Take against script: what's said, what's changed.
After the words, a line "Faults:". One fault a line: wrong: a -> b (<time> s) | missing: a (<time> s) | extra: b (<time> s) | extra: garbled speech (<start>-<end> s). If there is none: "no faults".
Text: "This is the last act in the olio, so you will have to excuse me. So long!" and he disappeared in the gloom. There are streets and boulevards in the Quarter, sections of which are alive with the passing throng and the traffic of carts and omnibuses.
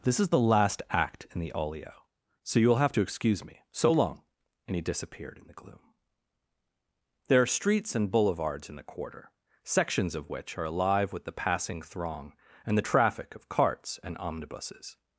"This is the last act in the olio, so you will have to excuse me. So long!" and he disappeared in the gloom. There are streets and boulevards in the Quarter, sections of which are alive with the passing throng and the traffic of carts and omnibuses.
Faults:
no faults